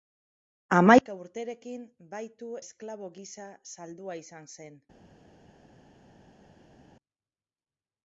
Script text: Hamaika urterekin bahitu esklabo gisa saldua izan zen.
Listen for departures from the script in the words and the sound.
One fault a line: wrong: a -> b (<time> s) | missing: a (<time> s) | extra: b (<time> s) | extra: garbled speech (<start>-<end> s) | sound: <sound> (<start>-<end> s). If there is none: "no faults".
no faults